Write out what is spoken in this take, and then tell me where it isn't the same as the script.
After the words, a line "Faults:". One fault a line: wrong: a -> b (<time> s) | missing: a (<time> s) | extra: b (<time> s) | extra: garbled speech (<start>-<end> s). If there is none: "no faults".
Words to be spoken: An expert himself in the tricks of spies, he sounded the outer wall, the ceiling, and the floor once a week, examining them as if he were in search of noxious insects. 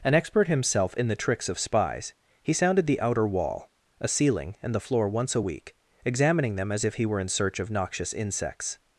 An expert himself in the tricks of spies, he sounded the outer wall, a ceiling, and the floor once a week, examining them as if he were in search of noxious insects.
Faults:
wrong: the -> a (4.0 s)